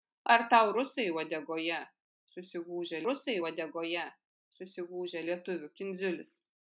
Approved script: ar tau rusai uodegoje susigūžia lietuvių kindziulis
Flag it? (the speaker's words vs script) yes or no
yes